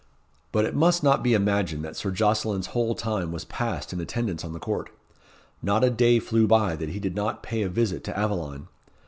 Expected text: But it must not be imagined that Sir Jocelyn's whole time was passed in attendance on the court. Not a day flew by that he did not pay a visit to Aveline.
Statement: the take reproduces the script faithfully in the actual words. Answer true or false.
true